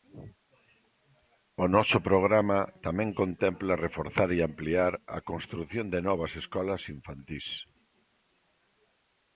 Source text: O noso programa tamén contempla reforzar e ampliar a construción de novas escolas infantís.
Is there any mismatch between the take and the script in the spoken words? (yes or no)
no